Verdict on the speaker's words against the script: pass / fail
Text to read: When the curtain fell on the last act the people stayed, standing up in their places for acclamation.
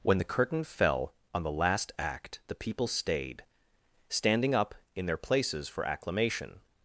pass